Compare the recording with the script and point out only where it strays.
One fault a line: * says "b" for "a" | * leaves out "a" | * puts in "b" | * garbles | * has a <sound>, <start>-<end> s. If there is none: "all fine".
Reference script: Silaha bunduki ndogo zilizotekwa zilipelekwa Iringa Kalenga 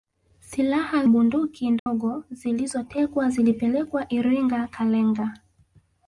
* has a dropout, 1.8-1.9 s